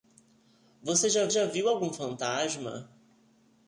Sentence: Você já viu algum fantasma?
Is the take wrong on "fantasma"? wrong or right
right